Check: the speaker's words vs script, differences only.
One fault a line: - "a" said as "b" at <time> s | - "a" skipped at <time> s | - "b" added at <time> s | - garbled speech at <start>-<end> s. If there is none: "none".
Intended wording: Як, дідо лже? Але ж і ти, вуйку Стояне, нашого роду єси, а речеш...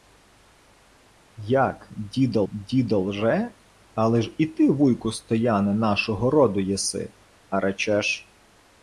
- "дідо" added at 2.5 s